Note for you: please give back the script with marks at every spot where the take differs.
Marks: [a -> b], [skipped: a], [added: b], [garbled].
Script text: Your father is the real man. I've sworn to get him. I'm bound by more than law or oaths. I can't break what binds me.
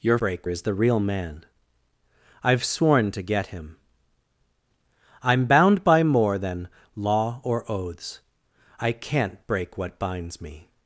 Your [father -> break] is the real man. I've sworn to get him. I'm bound by more than law or oaths. I can't break what binds me.